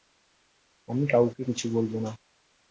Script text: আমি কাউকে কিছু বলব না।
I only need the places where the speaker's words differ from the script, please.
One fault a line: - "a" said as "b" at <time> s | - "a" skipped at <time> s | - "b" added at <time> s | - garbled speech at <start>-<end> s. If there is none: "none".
none